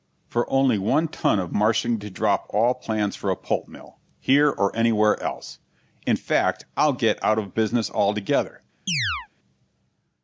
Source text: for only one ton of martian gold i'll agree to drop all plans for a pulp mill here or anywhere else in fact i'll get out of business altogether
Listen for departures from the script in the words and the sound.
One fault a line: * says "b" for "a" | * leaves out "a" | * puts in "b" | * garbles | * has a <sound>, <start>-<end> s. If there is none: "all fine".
* leaves out "gold i'll agree"
* has a chirp, 8.9-9.3 s